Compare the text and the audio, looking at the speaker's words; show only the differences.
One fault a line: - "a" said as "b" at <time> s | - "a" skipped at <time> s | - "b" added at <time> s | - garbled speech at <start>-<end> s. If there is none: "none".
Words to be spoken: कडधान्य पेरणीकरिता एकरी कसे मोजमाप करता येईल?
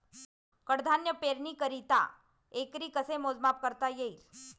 none